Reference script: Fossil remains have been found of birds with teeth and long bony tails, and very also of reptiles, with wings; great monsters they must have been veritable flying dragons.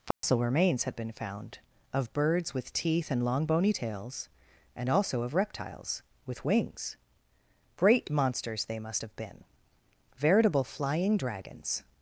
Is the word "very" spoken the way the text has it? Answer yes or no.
no